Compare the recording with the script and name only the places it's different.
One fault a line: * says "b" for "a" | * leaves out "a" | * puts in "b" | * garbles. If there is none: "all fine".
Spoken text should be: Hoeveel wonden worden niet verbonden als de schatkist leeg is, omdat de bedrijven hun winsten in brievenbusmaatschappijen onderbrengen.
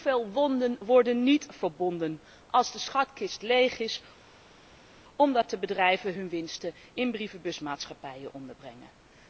all fine